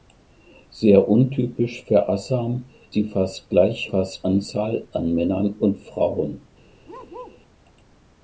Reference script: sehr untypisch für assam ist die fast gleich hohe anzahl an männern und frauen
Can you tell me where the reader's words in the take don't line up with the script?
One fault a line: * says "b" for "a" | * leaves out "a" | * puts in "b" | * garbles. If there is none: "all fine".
* leaves out "ist"
* says "fast" for "hohe"